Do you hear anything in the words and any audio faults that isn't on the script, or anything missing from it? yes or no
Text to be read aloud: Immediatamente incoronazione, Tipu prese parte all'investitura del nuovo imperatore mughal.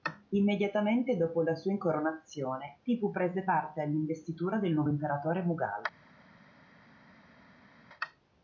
yes